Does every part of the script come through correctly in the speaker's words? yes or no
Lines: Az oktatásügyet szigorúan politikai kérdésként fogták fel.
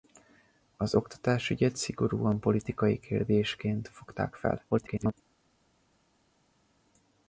no